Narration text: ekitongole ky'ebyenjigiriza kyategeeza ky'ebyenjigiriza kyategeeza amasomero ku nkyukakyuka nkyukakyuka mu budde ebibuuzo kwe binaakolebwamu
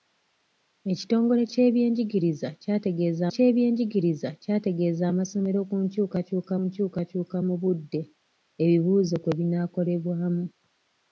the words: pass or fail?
pass